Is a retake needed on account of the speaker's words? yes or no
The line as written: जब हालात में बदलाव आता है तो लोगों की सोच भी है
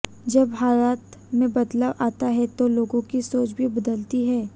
yes